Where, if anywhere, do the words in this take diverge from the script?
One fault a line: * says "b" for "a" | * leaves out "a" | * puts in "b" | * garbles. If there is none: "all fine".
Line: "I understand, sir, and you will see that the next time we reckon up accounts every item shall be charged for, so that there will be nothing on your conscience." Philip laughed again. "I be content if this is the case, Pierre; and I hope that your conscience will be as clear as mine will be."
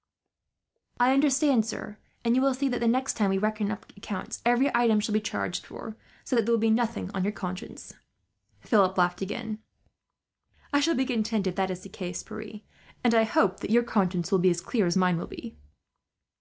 * puts in "shall"
* says "that" for "this"